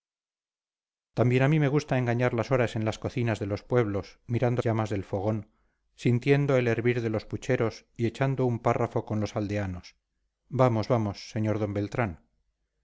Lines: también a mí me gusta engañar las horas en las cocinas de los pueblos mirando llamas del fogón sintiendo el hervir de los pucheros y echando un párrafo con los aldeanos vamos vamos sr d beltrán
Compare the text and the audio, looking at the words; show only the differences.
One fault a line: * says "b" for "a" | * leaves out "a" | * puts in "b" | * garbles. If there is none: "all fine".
all fine